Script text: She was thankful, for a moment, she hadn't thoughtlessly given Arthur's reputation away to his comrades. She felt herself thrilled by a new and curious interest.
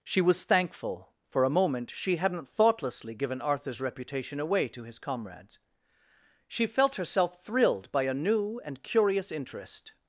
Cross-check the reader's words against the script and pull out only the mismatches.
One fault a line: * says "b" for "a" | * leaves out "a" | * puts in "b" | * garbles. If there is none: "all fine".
all fine